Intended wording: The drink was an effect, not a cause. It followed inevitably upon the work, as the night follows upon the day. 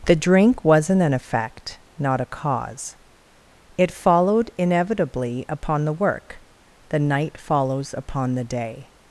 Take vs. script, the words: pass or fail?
fail